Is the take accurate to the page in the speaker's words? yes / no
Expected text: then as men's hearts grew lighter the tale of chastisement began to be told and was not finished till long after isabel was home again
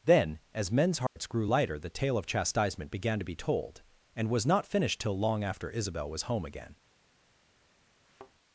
yes